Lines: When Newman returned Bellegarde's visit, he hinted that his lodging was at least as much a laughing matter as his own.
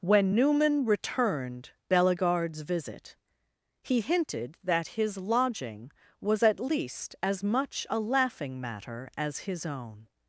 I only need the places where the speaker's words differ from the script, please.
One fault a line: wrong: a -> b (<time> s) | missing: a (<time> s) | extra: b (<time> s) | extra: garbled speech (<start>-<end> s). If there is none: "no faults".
no faults